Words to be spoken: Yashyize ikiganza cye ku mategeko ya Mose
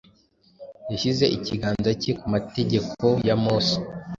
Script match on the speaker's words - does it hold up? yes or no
yes